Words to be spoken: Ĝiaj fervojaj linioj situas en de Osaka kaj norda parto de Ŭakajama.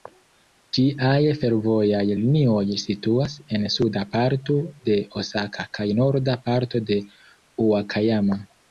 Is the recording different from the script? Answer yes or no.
yes